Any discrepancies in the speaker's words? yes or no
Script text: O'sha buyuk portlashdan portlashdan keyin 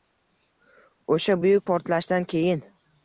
yes